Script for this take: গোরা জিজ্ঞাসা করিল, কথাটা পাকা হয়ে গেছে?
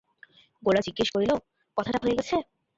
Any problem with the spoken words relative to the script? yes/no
yes